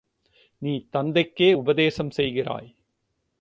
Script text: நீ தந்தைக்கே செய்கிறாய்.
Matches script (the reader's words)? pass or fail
fail